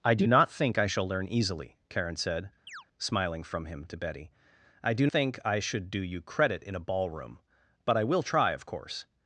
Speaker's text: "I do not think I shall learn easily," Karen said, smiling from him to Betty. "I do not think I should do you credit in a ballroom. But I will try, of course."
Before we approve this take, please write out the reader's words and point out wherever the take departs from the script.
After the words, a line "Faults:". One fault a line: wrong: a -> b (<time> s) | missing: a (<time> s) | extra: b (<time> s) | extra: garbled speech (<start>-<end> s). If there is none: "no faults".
"I do not think I shall learn easily," Karen said, smiling from him to Betty. "I do think I should do you credit in a ballroom. But I will try, of course."
Faults:
missing: not (5.1 s)